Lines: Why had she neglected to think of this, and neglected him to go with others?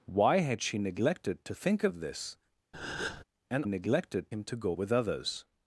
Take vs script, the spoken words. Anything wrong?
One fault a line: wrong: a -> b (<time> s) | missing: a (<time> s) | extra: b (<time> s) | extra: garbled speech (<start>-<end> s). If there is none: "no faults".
no faults